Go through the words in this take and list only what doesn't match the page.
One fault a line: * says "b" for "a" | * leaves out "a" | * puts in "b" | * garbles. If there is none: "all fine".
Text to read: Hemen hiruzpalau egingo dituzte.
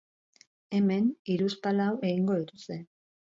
all fine